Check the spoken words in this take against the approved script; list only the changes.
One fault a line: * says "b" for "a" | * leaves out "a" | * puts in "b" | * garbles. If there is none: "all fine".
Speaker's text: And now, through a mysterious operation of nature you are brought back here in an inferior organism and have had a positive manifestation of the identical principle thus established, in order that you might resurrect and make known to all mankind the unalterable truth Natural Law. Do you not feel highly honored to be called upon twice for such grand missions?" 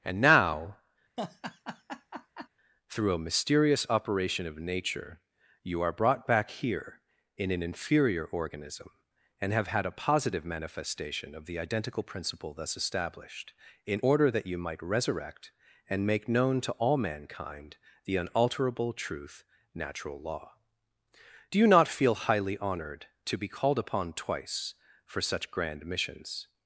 all fine